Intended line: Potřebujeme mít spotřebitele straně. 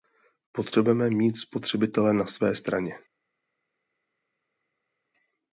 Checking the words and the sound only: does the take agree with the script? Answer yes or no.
no